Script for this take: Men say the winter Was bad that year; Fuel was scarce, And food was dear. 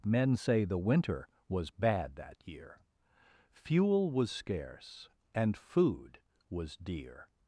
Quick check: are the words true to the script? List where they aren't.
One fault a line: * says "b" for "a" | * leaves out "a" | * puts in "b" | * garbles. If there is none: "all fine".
all fine